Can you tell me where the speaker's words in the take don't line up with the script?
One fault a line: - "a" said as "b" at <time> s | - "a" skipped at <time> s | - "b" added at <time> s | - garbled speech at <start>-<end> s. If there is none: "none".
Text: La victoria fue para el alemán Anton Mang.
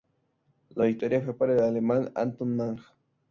none